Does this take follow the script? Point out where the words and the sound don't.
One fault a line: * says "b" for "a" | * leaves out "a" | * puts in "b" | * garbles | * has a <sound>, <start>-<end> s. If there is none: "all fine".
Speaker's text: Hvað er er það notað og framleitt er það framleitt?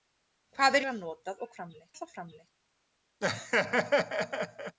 * has a laugh, 3.2-4.8 s